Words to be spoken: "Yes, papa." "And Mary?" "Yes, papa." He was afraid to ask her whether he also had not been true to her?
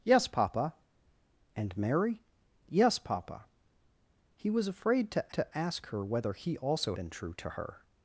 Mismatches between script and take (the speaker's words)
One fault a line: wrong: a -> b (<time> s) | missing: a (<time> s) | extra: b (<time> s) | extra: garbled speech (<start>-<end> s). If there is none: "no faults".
extra: to (5.3 s)
missing: had not (6.9 s)